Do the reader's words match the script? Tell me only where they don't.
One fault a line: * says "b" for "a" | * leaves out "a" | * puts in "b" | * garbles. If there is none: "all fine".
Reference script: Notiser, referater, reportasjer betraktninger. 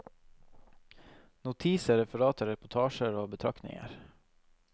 * puts in "og"